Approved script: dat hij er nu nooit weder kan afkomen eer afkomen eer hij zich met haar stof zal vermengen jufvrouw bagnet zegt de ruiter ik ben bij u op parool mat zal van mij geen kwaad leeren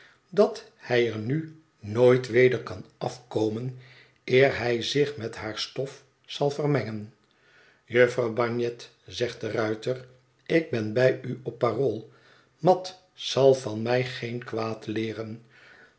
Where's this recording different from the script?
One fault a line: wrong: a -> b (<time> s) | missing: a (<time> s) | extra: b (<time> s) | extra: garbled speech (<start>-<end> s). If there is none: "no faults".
missing: afkomen eer (4.6 s)